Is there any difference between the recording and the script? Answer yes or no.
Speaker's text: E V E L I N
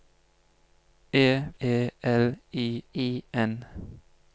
yes